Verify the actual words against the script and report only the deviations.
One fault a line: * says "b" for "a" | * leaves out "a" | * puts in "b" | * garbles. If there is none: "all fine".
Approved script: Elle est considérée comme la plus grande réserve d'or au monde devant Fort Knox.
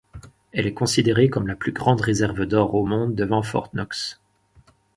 all fine